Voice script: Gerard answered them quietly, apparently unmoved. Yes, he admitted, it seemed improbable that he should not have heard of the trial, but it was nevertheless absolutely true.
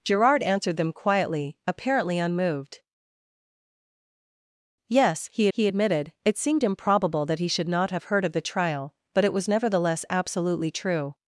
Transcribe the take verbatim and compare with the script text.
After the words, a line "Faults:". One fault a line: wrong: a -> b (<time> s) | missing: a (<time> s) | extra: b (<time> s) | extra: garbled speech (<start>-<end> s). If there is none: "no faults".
Gerard answered them quietly, apparently unmoved. Yes, he he admitted, it seemed improbable that he should not have heard of the trial, but it was nevertheless absolutely true.
Faults:
extra: he (5.5 s)